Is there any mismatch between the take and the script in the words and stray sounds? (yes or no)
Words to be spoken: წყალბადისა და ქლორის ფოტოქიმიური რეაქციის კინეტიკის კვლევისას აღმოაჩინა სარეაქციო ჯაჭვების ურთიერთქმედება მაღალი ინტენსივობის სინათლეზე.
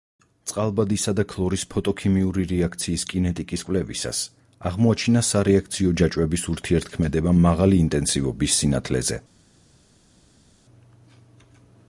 no